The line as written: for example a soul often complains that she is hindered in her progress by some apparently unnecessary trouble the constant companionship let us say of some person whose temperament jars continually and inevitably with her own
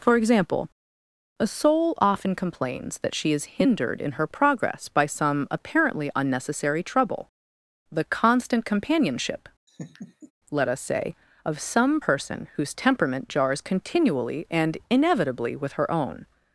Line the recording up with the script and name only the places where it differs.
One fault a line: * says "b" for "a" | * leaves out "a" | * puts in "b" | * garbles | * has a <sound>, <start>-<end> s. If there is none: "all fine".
* has a laugh, 9.7-10.3 s